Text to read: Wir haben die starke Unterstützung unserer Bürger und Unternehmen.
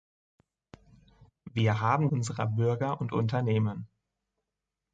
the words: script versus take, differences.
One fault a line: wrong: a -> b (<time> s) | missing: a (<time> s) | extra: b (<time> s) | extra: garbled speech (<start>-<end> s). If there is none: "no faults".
missing: die starke Unterstützung (2.1 s)